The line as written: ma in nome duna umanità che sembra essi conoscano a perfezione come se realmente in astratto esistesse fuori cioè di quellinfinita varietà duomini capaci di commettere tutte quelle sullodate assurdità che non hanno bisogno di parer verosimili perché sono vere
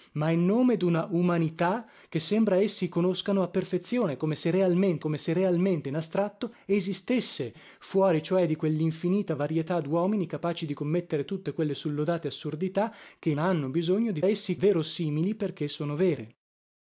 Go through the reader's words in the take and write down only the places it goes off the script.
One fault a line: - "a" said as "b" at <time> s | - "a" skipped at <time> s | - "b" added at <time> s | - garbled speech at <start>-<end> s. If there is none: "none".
- "come se realmente" added at 5.0 s
- "non" skipped at 13.3 s
- "parer" said as "essi" at 14.3 s